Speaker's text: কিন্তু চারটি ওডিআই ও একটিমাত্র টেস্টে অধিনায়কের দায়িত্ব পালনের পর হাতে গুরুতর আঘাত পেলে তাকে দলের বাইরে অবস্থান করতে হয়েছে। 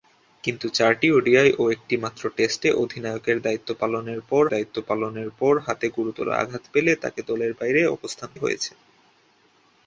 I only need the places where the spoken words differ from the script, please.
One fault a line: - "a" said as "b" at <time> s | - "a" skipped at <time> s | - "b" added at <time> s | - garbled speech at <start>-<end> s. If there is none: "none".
- "দায়িত্ব পালনের পর" added at 4.5 s
- "করতে" skipped at 8.3 s